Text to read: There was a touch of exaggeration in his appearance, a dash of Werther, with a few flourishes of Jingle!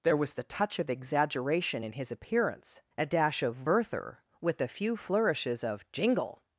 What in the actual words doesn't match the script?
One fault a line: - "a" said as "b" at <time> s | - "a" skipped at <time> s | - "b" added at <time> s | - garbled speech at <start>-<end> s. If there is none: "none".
- "a" said as "the" at 0.3 s